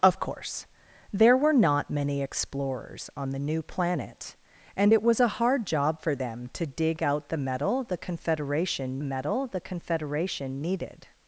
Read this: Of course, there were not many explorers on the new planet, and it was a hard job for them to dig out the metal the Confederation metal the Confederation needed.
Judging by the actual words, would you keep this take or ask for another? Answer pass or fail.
pass